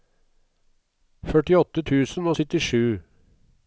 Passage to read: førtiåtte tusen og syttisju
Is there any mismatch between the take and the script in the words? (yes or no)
no